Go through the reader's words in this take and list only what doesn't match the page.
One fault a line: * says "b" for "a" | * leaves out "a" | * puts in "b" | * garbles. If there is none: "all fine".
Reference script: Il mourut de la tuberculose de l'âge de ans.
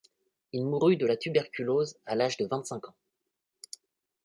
* says "à" for "de"
* puts in "vingt cinq"